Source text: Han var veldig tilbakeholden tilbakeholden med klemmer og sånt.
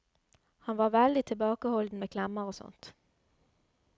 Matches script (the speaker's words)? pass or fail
fail